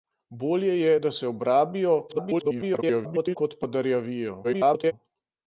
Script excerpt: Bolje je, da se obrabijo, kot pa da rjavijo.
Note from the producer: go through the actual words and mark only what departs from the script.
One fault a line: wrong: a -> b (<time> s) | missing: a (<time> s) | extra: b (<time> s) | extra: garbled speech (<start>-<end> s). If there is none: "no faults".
extra: garbled speech (2.1-3.4 s)
extra: garbled speech (4.4-4.9 s)